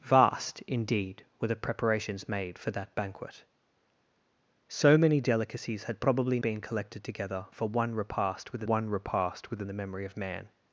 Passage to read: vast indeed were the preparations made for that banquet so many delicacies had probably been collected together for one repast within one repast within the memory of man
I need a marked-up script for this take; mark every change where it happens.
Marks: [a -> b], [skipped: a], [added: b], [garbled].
vast indeed were the preparations made for that banquet so many delicacies had probably been collected together for one repast within one repast within the memory of man